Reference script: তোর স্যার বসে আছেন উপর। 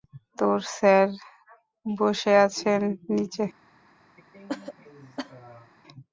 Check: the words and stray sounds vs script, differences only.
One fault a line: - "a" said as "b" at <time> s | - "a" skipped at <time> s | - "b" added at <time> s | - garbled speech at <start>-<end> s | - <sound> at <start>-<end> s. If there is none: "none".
- "উপর" said as "নিচে" at 3.1 s
- cough at 4.2-5.7 s